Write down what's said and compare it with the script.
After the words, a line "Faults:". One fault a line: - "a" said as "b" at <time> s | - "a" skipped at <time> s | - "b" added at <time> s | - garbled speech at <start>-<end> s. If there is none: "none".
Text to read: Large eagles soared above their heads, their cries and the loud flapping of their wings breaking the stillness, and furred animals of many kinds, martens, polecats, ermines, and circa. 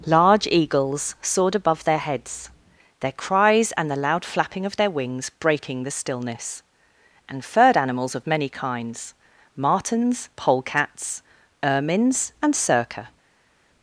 Large eagles soared above their heads, their cries and the loud flapping of their wings breaking the stillness, and furred animals of many kinds, martens, polecats, ermines, and circa.
Faults:
none